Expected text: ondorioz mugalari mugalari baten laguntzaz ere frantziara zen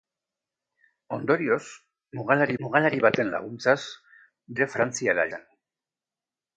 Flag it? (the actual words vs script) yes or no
no